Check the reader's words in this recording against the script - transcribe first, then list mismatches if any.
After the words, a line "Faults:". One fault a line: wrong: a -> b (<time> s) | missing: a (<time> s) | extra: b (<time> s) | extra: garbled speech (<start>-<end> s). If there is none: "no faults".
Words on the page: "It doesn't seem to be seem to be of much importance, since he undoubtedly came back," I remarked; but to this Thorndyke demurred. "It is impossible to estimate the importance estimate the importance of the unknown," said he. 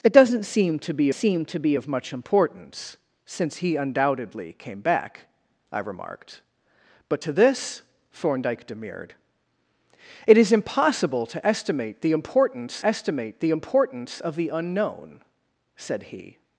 "It doesn't seem to be seem to be of much importance, since he undoubtedly came back," I remarked; but to this Thorndyke demurred. "It is impossible to estimate the importance estimate the importance of the unknown," said he.
Faults:
no faults